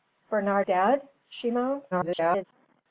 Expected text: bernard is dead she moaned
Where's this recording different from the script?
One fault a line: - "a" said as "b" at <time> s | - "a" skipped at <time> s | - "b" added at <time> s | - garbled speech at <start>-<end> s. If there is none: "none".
- "is" skipped at 0.7 s
- garbled speech at 1.9-2.4 s